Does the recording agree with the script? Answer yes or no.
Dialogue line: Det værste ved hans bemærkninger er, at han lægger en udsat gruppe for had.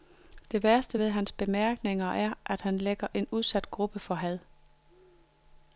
yes